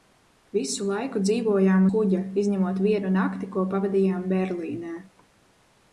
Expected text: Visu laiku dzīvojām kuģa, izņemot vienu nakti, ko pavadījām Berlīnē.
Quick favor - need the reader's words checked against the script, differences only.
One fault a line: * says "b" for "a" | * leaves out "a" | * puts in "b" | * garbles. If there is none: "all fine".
all fine